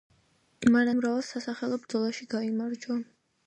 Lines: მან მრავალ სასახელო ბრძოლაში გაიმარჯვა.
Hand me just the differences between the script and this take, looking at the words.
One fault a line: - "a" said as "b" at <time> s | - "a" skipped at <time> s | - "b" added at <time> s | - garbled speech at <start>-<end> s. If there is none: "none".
none